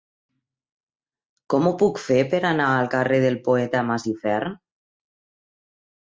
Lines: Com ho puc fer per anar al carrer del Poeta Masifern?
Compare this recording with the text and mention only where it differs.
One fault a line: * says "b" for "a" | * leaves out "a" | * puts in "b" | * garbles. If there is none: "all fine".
all fine